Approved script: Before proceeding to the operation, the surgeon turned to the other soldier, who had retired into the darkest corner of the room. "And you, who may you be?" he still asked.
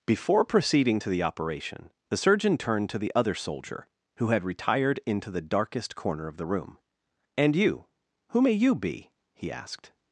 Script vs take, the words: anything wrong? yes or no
yes